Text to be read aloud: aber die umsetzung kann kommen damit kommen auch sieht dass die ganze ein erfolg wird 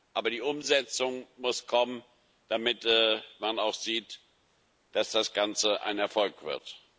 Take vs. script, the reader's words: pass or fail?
fail